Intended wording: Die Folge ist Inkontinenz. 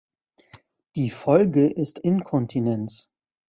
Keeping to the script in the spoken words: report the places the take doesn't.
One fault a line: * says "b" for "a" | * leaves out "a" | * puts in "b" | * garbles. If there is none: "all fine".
all fine